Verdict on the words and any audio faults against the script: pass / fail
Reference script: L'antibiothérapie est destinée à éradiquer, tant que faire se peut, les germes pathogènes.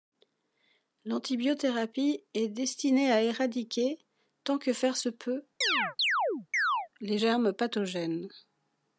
fail